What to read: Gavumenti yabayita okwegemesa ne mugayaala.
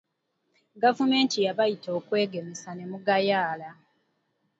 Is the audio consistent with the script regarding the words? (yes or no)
yes